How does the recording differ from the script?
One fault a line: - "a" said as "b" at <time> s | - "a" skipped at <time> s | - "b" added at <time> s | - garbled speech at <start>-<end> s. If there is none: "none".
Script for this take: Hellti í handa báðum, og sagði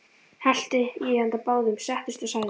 - "settist" added at 1.9 s